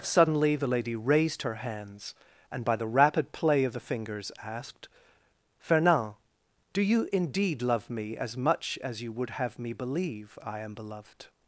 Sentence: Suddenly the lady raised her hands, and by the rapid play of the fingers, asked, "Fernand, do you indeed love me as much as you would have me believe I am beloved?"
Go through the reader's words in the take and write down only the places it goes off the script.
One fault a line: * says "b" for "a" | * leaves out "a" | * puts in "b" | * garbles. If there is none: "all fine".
all fine